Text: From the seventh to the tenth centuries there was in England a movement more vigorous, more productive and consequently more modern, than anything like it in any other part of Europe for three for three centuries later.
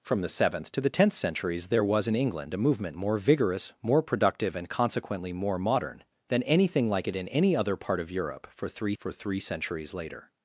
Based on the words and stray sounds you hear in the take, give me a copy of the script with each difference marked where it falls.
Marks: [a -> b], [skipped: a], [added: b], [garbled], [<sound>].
From the seventh to the tenth centuries there was in England a movement more vigorous, more productive and consequently more modern, than anything like it in any other part of Europe for three for three centuries later.